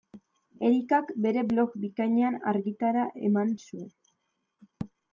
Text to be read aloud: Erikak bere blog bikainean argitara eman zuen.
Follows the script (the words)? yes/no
yes